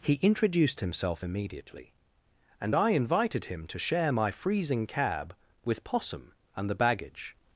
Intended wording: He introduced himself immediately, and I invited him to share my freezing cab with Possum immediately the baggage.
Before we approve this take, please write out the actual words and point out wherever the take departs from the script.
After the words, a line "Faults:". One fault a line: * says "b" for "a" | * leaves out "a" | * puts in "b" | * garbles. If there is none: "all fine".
He introduced himself immediately, and I invited him to share my freezing cab with Possum and the baggage.
Faults:
* says "and" for "immediately"